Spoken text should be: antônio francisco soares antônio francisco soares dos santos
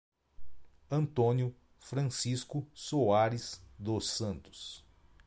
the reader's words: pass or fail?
fail